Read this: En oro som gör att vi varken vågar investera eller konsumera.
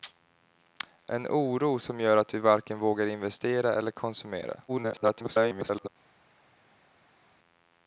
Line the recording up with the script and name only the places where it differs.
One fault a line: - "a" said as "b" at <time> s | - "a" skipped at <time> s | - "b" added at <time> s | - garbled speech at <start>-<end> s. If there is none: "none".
- garbled speech at 4.7-5.9 s